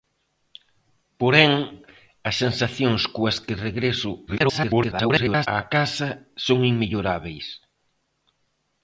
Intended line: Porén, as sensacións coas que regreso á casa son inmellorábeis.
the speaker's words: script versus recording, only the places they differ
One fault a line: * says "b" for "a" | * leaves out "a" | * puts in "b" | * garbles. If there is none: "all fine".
* garbles